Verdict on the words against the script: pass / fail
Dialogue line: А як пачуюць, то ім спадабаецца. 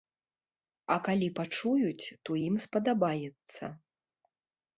fail